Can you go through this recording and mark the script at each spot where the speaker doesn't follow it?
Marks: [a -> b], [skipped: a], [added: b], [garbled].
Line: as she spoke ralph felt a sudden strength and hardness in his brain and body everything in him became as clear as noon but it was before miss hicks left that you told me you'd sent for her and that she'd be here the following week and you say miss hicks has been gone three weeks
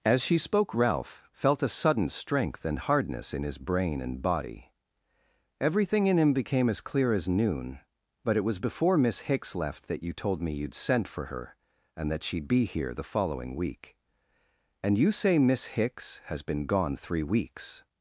as she spoke ralph felt a sudden strength and hardness in his brain and body everything in him became as clear as noon but it was before miss hicks left that you told me you'd sent for her and that she'd be here the following week and you say miss hicks has been gone three weeks